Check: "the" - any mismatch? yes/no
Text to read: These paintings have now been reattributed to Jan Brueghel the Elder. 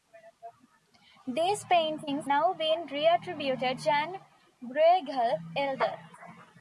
yes